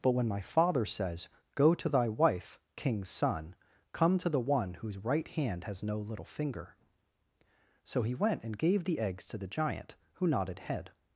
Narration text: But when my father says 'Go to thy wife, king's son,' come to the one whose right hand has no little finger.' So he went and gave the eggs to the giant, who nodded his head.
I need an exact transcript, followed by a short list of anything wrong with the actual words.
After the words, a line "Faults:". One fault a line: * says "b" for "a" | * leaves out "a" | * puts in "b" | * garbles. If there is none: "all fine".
But when my father says 'Go to thy wife, king's son,' come to the one whose right hand has no little finger.' So he went and gave the eggs to the giant, who nodded head.
Faults:
* leaves out "his"